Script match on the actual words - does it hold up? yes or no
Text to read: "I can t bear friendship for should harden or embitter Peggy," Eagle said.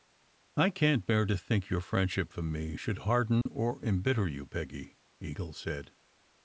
no